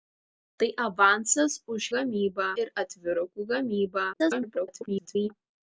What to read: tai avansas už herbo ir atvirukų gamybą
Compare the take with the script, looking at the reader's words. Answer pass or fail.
fail